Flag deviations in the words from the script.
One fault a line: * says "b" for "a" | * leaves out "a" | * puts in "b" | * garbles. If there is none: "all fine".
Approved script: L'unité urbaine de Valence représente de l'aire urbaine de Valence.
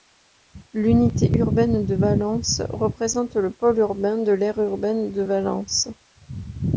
* puts in "le pôle urbain"